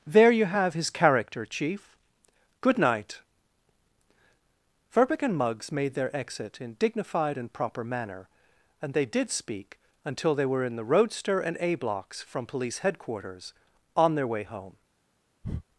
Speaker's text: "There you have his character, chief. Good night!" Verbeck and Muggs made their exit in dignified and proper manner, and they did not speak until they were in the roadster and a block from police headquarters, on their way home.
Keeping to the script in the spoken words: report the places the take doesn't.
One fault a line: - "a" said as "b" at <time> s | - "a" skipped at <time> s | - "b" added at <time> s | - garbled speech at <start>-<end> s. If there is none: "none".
- "not" skipped at 9.3 s
- "block" said as "blocks" at 11.8 s